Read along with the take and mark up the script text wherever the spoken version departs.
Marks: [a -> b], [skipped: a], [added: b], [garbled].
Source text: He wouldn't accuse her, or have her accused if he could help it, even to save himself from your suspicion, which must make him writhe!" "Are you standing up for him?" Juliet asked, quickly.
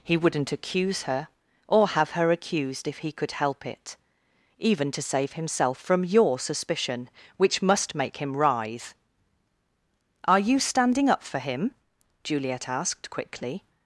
He wouldn't accuse her, or have her accused if he could help it, even to save himself from your suspicion, which must make him writhe!" "Are you standing up for him?" Juliet asked, quickly.